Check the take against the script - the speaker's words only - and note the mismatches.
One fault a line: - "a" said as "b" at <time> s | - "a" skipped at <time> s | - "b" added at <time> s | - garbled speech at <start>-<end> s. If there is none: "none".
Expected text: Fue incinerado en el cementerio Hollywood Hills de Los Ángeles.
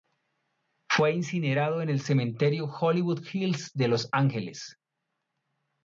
none